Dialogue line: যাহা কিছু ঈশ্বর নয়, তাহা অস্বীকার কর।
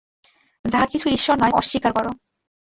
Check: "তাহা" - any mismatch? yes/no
yes